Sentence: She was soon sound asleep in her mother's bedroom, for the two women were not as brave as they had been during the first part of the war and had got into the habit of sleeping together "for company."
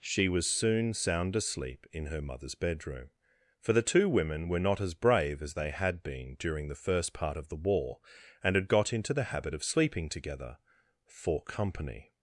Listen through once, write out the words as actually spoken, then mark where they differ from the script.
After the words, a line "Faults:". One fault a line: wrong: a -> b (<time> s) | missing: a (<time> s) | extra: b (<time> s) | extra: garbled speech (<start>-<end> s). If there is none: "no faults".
She was soon sound asleep in her mother's bedroom, for the two women were not as brave as they had been during the first part of the war and had got into the habit of sleeping together "for company."
Faults:
no faults